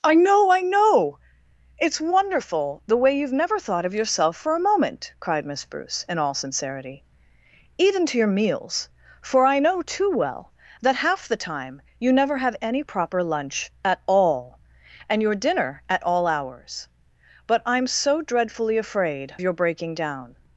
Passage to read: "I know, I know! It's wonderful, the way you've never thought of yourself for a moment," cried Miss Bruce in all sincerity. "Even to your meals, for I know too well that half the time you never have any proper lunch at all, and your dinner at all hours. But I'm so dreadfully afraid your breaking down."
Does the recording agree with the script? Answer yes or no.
yes